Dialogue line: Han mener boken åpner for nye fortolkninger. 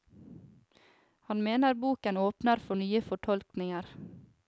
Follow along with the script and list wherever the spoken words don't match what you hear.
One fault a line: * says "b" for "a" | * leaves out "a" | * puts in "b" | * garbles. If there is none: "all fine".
all fine